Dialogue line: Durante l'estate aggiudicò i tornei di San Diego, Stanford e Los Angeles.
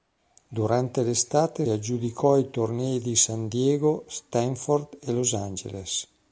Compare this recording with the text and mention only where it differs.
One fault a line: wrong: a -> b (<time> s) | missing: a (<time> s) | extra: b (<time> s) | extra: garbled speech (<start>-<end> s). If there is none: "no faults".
no faults